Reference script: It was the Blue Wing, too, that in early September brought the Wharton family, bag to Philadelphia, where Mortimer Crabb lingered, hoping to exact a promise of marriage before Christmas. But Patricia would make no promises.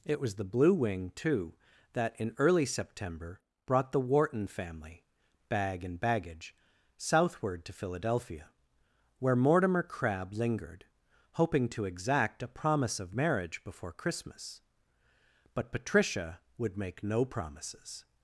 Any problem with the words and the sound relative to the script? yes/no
yes